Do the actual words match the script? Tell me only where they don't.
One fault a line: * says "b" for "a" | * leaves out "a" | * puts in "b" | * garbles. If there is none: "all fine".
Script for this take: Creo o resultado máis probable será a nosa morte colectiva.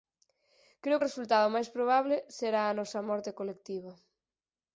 all fine